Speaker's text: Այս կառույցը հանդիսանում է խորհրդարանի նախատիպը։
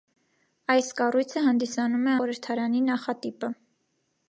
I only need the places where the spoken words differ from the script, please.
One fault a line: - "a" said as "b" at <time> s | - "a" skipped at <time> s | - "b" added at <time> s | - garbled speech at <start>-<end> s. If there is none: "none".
none